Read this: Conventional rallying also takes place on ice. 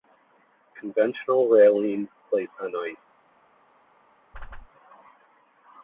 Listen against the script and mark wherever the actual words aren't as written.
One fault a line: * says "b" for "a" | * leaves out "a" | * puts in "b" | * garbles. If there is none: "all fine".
* leaves out "also takes"